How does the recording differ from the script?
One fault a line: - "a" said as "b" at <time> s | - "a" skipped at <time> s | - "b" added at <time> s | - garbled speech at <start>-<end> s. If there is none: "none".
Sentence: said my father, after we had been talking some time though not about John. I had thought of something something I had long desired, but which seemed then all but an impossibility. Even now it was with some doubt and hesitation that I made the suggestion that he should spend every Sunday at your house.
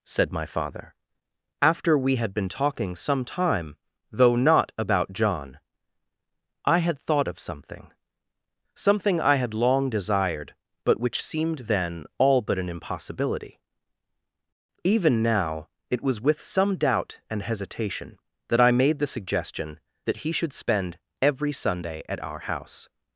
- "your" said as "our" at 22.2 s